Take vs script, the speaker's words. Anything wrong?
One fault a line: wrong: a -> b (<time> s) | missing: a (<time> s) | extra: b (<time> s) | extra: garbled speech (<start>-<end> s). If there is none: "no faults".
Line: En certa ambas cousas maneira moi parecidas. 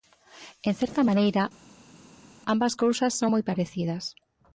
extra: maneira (1.1 s)
wrong: maneira -> son (3.2 s)